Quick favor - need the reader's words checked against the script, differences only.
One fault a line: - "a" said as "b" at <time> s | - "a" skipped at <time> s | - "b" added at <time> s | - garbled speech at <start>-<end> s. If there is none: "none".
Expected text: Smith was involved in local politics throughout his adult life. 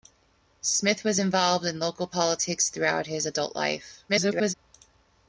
- garbled speech at 4.1-4.5 s